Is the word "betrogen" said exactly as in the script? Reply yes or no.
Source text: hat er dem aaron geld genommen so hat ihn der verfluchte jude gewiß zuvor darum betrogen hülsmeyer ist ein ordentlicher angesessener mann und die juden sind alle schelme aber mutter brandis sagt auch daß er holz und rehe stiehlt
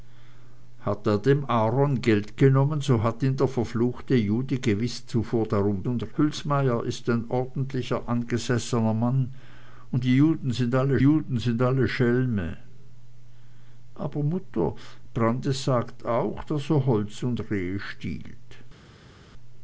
no